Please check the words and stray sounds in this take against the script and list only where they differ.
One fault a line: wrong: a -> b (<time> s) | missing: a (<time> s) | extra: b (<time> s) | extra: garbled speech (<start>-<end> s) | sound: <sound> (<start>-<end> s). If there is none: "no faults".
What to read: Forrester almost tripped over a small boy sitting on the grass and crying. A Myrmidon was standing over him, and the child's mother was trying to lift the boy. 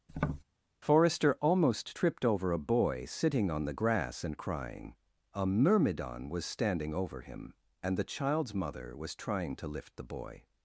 sound: tap (0.1-0.4 s)
missing: small (2.7 s)